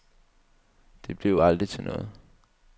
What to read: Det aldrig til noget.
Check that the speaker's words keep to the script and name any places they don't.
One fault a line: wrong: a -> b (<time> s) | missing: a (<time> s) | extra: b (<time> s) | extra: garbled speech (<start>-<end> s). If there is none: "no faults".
extra: blev (1.2 s)